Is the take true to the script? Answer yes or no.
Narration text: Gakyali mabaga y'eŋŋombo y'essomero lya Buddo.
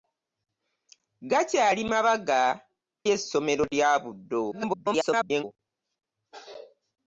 no